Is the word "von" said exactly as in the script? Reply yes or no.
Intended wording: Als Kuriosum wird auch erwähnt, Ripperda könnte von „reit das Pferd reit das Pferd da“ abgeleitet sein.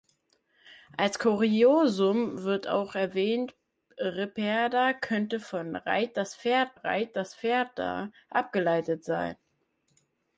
yes